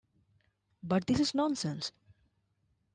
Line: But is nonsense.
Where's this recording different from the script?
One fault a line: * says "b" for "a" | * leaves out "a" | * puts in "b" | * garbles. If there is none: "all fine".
* puts in "this"